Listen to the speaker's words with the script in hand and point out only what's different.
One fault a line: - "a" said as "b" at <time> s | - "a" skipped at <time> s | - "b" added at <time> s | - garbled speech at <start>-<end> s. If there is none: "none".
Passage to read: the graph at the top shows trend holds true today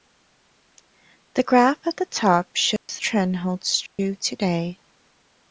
none